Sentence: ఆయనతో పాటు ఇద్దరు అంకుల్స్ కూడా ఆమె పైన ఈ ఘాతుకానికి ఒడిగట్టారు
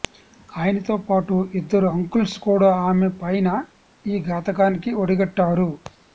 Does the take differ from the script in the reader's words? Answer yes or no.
no